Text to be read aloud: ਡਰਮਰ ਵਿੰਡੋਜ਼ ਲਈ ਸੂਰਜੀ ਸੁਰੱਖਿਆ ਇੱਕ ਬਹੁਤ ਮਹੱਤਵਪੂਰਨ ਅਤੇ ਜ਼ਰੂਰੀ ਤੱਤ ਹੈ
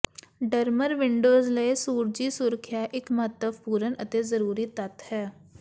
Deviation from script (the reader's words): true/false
true